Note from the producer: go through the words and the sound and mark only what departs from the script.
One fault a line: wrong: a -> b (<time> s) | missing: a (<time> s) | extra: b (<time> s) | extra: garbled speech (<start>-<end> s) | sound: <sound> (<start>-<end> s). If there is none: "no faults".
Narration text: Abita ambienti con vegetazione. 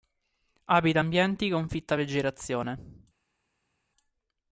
extra: fitta (1.7 s)